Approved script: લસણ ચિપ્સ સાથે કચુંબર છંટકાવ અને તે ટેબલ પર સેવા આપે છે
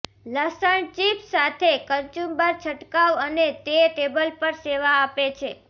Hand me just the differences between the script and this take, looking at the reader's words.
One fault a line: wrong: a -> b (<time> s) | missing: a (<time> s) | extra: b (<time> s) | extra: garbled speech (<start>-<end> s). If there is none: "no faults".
no faults